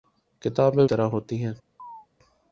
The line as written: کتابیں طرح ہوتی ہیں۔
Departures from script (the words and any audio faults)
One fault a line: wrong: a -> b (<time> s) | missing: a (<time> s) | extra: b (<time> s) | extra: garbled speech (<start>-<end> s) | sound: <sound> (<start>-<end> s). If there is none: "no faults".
sound: chirp (1.8-2.1 s)